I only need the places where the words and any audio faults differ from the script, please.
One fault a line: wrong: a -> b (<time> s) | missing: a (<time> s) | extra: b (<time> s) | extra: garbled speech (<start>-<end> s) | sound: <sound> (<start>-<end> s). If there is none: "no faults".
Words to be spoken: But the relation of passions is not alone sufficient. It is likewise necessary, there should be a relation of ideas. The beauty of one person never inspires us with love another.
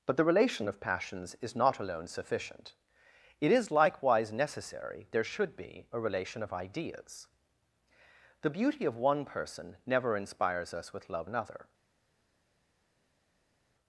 no faults